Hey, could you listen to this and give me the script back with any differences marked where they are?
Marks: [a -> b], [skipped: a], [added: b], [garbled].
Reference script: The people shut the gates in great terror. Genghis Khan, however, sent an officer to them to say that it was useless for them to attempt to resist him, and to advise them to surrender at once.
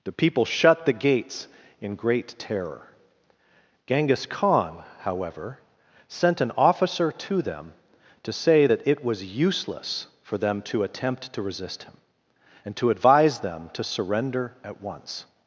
The people shut the gates in great terror. Genghis Khan, however, sent an officer to them to say that it was useless for them to attempt to resist him, and to advise them to surrender at once.